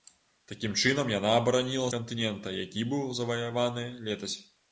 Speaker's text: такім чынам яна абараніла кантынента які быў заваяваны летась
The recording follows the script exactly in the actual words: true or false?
true